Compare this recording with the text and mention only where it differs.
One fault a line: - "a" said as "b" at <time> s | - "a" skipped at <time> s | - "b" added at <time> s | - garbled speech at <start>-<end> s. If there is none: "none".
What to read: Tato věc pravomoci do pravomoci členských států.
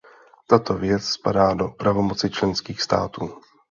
- "pravomoci" said as "spadá" at 1.0 s